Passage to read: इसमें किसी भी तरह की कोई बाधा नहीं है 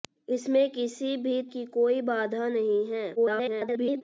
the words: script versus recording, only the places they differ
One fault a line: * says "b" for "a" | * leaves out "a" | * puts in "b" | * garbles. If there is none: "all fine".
* leaves out "तरह"
* garbles